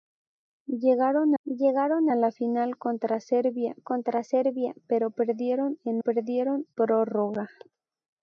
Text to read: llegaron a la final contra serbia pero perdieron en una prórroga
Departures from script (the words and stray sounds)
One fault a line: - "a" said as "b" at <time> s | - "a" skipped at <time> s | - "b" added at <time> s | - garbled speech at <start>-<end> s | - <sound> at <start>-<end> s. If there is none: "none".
- "llegaron" added at 1.4 s
- "contra serbia" added at 3.8 s
- "una" said as "perdieron" at 6.0 s